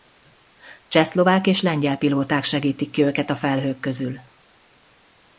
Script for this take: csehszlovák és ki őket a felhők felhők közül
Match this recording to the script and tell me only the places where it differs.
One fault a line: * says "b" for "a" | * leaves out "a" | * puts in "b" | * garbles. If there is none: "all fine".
* puts in "lengyel pilóták segítik"
* leaves out "felhők"